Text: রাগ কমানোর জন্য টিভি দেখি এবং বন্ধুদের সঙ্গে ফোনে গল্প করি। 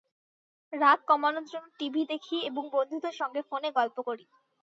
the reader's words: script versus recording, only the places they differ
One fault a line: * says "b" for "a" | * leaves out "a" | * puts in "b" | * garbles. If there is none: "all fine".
all fine